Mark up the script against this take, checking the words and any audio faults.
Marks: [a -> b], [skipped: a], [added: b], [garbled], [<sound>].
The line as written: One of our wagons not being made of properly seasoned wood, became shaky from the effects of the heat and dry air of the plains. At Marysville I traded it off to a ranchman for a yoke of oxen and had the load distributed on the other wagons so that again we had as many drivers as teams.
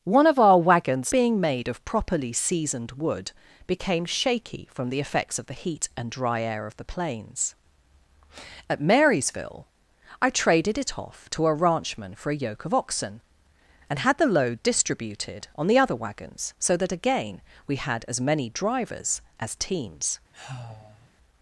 One of our wagons [skipped: not] being made of properly seasoned wood, became shaky from the effects of the heat and dry air of the plains. At Marysville I traded it off to a ranchman for a yoke of oxen and had the load distributed on the other wagons so that again we had as many drivers as teams. [sigh]